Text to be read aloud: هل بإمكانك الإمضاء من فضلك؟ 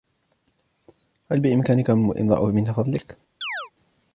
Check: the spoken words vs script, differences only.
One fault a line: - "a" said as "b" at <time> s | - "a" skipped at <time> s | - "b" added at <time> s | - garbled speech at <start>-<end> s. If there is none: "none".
none